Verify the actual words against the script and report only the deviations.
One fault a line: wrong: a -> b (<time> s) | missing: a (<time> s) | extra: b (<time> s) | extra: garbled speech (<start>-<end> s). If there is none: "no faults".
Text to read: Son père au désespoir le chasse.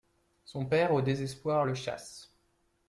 no faults